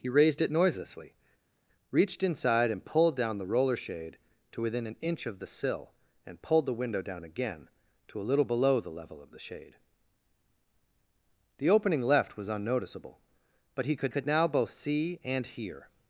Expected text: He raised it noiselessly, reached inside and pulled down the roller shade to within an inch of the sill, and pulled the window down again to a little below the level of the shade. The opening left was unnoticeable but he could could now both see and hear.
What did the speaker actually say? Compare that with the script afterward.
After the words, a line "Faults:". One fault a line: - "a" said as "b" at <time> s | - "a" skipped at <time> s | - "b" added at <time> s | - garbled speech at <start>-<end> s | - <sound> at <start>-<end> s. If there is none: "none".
He raised it noiselessly, reached inside and pulled down the roller shade to within an inch of the sill, and pulled the window down again to a little below the level of the shade. The opening left was unnoticeable but he could could now both see and hear.
Faults:
none